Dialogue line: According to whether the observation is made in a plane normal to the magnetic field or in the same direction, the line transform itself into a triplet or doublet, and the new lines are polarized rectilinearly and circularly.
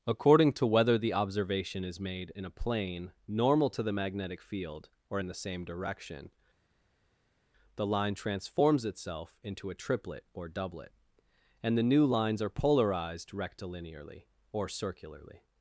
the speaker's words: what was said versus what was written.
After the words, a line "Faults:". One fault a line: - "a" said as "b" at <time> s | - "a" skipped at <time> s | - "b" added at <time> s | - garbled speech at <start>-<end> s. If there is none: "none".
According to whether the observation is made in a plane normal to the magnetic field or in the same direction, the line transforms itself into a triplet or doublet, and the new lines are polarized rectilinearly or circularly.
Faults:
- "transform" said as "transforms" at 8.1 s
- "and" said as "or" at 14.5 s